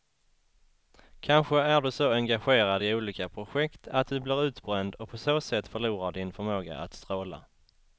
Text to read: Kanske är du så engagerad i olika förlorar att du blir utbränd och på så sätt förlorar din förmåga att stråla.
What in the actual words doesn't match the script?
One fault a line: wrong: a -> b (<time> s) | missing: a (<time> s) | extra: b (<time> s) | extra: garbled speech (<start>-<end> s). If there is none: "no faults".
wrong: förlorar -> projekt (3.3 s)